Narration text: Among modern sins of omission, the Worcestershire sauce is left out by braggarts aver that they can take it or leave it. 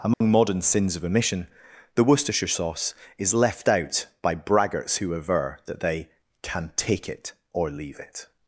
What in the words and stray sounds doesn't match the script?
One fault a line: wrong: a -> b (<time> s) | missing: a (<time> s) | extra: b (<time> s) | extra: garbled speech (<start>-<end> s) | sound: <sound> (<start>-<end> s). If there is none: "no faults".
sound: dropout (0.1-0.2 s)
extra: who (5.0 s)